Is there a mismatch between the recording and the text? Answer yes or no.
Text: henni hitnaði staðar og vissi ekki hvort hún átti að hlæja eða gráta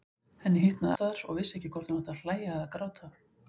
no